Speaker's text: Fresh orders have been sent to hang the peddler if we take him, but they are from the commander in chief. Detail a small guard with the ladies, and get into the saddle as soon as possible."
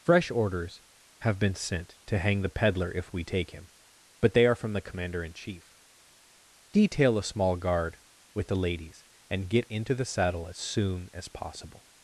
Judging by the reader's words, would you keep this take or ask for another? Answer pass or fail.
pass